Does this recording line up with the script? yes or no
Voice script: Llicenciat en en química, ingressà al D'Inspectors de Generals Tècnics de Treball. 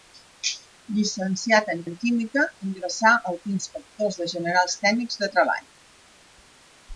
yes